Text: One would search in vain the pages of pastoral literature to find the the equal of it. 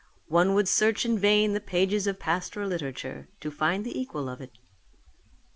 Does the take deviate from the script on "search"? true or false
false